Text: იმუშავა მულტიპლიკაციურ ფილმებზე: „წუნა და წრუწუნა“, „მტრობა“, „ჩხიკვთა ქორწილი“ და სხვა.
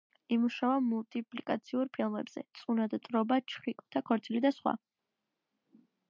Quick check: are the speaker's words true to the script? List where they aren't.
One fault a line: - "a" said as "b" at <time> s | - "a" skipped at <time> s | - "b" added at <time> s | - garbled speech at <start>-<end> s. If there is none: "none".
- "წრუწუნა" skipped at 3.0 s